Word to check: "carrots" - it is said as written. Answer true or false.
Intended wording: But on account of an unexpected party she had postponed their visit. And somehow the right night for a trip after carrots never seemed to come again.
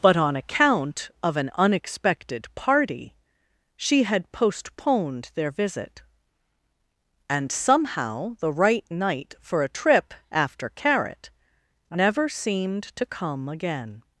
false